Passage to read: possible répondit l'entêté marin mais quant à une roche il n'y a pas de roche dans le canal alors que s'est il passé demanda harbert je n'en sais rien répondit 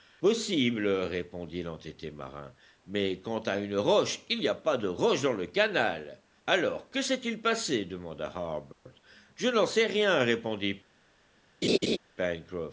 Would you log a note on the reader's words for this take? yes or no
no